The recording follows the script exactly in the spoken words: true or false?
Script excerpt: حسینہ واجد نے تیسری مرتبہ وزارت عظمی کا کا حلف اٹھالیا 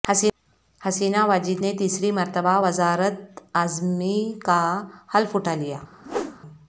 false